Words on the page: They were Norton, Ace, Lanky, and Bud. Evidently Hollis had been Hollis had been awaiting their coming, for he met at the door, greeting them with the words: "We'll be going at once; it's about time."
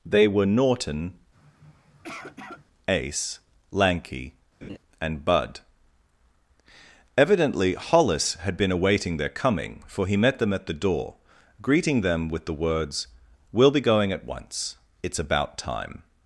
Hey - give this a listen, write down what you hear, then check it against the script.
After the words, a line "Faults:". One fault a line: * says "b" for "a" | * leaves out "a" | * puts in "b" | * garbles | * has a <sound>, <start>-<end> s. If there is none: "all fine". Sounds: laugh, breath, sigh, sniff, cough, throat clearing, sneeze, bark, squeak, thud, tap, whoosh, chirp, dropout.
They were Norton, Ace, Lanky, and Bud. Evidently Hollis had been awaiting their coming, for he met them at the door, greeting them with the words: "We'll be going at once; it's about time."
Faults:
* has a sniff, 1.3-2.7 s
* has a laugh, 4.6-4.8 s
* leaves out "Hollis had been"
* puts in "them"